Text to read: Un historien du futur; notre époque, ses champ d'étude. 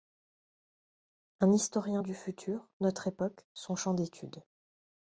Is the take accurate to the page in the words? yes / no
no